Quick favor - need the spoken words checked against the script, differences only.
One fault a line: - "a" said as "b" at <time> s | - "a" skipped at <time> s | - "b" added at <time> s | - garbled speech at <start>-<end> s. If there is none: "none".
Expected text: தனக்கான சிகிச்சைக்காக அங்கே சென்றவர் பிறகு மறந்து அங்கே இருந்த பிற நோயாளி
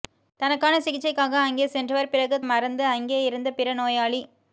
none